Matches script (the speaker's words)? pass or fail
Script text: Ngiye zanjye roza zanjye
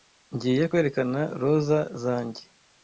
fail